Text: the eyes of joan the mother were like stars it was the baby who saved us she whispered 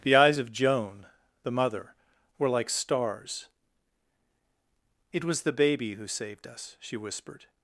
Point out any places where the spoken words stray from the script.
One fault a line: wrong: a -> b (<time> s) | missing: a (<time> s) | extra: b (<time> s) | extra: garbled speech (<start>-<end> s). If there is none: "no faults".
no faults